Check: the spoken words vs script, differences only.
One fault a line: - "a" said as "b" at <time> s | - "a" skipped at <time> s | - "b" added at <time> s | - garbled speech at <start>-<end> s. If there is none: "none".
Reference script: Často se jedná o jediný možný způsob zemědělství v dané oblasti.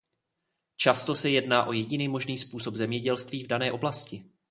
none